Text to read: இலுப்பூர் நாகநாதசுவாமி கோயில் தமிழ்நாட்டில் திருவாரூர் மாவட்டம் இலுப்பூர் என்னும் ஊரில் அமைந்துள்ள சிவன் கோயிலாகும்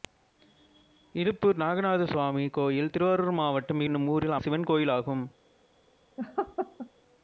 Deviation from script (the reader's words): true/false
true